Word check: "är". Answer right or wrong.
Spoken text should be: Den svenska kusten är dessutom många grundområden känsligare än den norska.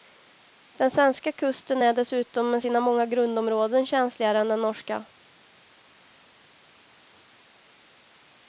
right